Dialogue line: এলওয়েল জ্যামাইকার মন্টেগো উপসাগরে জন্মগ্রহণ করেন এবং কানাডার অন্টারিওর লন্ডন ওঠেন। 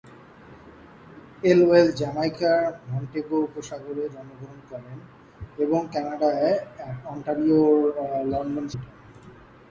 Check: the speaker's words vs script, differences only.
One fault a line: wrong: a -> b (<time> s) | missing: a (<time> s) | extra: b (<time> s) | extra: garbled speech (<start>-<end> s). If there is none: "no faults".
no faults